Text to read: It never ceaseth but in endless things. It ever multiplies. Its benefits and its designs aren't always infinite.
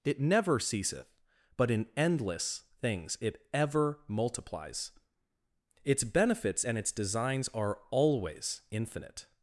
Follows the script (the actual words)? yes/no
no